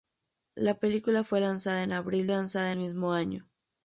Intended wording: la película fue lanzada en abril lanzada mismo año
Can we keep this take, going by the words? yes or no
yes